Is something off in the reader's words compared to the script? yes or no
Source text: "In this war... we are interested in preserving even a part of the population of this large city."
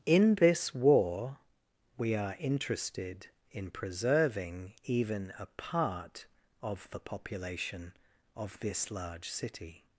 no